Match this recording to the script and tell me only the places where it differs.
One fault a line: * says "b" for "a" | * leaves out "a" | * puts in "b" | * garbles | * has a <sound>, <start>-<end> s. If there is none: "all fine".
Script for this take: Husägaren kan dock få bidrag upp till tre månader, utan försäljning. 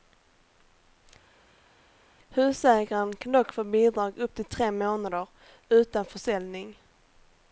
all fine